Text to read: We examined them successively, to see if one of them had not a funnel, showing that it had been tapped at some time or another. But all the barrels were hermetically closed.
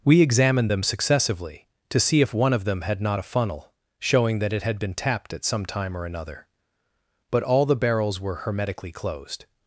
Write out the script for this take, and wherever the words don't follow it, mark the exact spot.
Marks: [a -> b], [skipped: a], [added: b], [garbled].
We examined them successively, to see if one of them had not a funnel, showing that it had been tapped at some time or another. But all the barrels were hermetically closed.